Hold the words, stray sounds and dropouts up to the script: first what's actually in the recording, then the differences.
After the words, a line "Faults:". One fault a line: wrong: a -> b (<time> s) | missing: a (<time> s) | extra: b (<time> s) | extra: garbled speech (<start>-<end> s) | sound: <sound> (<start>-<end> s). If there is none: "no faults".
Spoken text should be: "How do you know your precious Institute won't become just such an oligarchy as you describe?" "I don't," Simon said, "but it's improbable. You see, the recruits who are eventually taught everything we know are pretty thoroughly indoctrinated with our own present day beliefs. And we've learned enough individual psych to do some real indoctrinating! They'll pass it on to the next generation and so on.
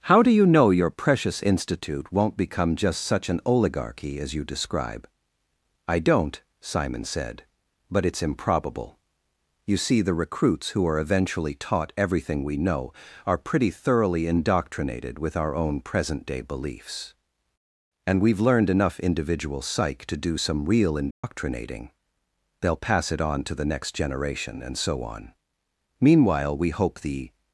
"How do you know your precious Institute won't become just such an oligarchy as you describe?" "I don't," Simon said, "but it's improbable. You see, the recruits who are eventually taught everything we know are pretty thoroughly indoctrinated with our own present day beliefs. And we've learned enough individual psych to do some real indoctrinating! They'll pass it on to the next generation and so on. "Meanwhile we hope the
Faults:
sound: dropout (21.1-21.2 s)
extra: Meanwhile we hope the (26.0 s)